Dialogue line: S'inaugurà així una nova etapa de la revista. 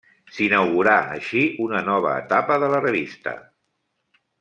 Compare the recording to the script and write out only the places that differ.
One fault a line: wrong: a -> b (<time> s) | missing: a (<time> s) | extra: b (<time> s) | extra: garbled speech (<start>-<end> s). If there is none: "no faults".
no faults